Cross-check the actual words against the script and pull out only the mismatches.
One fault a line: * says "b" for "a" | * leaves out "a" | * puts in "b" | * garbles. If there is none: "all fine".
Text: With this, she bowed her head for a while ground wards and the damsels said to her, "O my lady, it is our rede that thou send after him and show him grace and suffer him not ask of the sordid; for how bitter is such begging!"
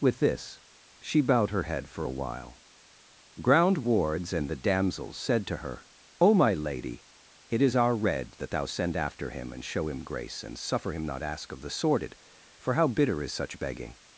all fine